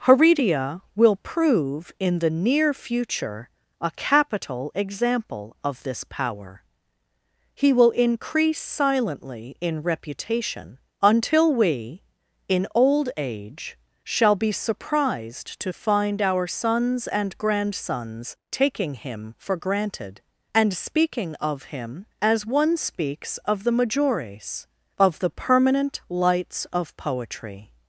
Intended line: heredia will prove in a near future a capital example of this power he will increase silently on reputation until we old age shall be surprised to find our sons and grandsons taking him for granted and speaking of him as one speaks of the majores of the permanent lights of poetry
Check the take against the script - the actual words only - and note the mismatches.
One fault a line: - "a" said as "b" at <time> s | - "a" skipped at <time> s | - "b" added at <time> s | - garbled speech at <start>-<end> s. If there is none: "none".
- "a" said as "the" at 2.2 s
- "on" said as "in" at 9.6 s
- "in" added at 12.5 s